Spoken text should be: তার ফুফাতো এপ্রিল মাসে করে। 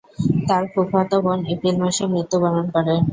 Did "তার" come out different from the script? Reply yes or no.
no